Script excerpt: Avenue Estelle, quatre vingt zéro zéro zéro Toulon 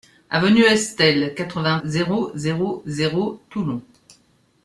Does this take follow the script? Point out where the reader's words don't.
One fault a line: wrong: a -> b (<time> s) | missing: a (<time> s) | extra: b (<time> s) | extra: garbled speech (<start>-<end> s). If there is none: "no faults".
no faults